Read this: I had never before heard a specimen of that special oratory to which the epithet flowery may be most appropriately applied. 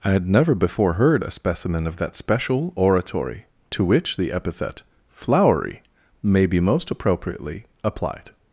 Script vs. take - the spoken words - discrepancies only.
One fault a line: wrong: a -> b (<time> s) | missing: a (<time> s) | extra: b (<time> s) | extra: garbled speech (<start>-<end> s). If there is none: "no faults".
no faults